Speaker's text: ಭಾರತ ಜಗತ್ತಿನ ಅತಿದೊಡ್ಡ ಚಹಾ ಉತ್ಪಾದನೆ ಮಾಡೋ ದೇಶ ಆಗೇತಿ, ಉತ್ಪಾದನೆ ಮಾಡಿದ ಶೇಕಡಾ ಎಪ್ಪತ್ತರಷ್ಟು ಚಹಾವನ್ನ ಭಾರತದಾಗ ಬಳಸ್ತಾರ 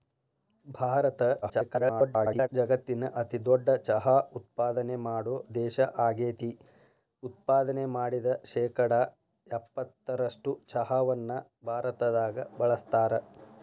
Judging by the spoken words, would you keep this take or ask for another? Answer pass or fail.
fail